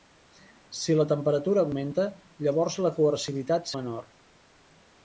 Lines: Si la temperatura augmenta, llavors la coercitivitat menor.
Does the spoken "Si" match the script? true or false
true